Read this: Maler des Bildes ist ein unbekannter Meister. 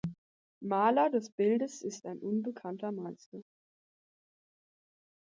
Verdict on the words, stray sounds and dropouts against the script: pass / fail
pass